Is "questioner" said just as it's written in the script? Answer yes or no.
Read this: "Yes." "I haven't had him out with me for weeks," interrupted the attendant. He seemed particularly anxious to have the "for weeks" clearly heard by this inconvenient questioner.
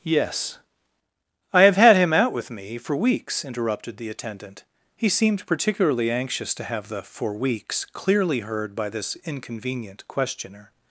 yes